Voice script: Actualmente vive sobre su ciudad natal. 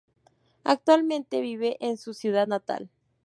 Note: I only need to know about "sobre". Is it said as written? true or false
false